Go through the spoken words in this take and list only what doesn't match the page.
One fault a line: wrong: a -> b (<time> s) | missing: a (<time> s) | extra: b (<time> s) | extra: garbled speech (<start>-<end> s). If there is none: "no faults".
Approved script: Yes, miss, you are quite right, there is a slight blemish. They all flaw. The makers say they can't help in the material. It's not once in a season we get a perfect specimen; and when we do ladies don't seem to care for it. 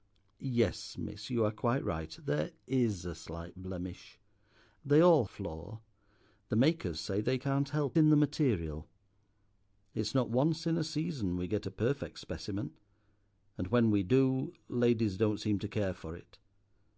no faults